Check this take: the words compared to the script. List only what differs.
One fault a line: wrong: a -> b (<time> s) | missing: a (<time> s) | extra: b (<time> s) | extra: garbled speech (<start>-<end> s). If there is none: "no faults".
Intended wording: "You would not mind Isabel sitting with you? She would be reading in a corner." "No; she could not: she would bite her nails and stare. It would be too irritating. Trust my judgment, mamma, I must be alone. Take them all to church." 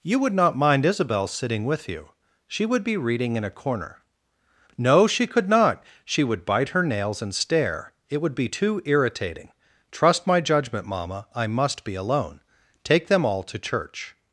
no faults